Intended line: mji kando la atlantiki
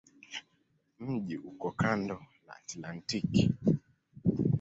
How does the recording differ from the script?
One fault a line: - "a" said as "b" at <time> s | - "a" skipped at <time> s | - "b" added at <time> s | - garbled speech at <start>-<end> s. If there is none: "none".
- "uko" added at 1.4 s